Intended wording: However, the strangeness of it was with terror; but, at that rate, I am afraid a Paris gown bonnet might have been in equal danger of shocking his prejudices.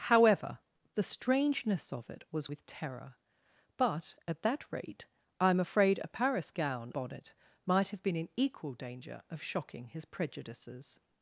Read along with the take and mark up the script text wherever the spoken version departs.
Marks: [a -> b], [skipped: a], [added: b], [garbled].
However, the strangeness of it was with terror; but, at that rate, I am afraid a Paris gown bonnet might have been in equal danger of shocking his prejudices.